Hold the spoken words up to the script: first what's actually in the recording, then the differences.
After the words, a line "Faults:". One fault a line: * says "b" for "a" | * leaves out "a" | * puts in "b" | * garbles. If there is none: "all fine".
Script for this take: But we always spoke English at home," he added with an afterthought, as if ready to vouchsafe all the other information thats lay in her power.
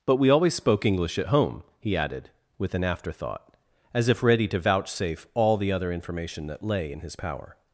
But we always spoke English at home," he added with an afterthought, as if ready to vouchsafe all the other information that lay in his power.
Faults:
* says "that" for "thats"
* says "his" for "her"